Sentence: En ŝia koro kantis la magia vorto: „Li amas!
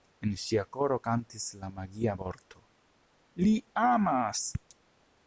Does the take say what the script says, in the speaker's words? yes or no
yes